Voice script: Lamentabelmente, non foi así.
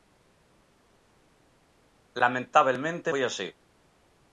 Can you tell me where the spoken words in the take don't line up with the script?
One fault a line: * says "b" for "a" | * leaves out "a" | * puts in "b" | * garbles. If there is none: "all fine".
* leaves out "non"